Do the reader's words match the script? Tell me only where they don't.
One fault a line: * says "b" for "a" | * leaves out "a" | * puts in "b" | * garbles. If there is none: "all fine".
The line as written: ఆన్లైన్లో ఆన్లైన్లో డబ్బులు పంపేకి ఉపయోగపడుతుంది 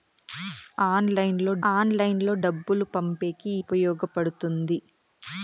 all fine